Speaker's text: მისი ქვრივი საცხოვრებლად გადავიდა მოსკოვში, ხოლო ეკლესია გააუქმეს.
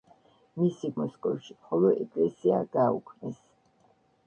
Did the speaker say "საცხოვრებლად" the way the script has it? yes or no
no